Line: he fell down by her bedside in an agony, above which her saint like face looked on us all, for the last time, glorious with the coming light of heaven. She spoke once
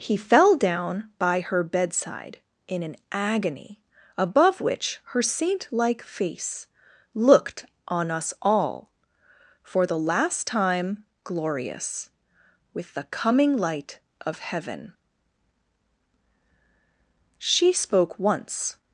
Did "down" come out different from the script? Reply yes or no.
no